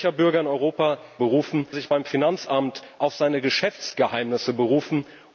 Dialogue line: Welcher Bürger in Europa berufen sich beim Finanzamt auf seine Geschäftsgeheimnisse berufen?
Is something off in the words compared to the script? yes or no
no